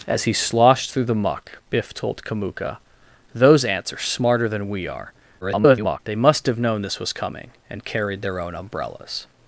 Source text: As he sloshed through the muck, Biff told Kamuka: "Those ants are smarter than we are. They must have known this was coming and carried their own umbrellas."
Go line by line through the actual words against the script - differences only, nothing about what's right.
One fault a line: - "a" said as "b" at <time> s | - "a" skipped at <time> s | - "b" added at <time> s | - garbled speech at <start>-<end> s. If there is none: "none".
- garbled speech at 5.4-6.0 s